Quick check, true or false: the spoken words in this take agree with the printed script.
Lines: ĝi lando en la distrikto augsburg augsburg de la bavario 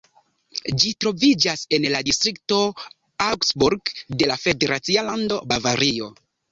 false